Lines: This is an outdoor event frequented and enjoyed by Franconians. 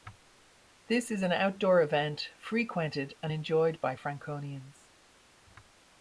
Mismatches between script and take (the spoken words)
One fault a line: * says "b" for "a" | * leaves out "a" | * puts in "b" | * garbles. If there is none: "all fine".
all fine